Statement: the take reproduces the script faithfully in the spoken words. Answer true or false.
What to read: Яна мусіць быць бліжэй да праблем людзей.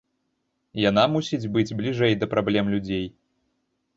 true